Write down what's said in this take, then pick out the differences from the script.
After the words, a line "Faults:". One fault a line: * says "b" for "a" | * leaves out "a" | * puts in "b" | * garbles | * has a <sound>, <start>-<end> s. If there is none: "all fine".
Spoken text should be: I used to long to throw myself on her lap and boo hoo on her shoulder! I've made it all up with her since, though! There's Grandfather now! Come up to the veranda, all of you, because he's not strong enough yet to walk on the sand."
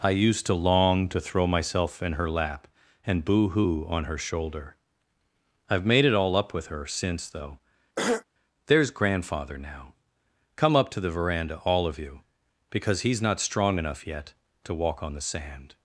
I used to long to throw myself in her lap and boo hoo on her shoulder! I've made it all up with her since, though! There's Grandfather now! Come up to the veranda, all of you, because he's not strong enough yet to walk on the sand."
Faults:
* says "in" for "on"
* has a throat clearing, 8.0-8.2 s